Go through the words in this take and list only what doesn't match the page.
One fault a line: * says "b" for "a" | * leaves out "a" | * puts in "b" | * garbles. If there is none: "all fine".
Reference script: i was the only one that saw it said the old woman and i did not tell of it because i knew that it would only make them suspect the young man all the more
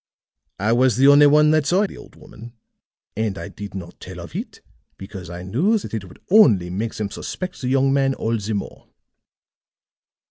* leaves out "it said"